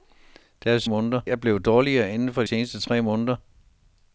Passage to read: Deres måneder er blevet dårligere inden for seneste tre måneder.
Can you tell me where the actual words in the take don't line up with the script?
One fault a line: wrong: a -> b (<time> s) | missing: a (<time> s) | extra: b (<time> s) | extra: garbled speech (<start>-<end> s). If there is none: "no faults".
no faults